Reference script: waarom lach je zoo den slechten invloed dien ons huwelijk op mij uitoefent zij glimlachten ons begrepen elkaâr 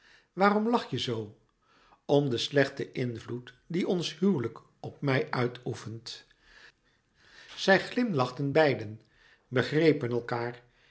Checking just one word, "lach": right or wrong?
right